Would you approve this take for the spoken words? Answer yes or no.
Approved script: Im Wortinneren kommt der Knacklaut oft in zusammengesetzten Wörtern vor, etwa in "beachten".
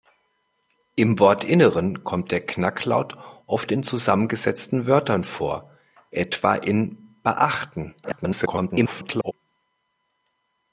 no